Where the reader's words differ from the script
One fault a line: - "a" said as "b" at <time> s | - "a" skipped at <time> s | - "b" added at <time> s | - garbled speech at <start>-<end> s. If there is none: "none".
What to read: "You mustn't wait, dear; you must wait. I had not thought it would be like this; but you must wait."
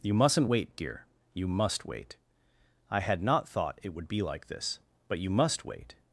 none